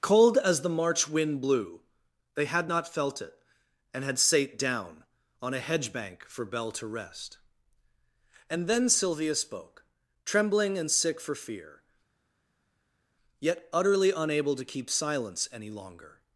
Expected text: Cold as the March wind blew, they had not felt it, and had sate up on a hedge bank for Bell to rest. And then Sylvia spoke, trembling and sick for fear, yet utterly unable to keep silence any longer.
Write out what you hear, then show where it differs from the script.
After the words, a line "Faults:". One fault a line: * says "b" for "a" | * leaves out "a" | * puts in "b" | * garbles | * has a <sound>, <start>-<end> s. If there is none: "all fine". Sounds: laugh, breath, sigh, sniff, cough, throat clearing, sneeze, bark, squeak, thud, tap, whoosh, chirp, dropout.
Cold as the March wind blew, they had not felt it, and had sate down on a hedge bank for Bell to rest. And then Sylvia spoke, trembling and sick for fear, yet utterly unable to keep silence any longer.
Faults:
* says "down" for "up"